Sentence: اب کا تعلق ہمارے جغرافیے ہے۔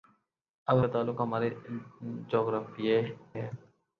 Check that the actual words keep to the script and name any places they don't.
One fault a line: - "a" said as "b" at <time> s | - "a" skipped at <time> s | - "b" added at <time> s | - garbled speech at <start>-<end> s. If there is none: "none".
none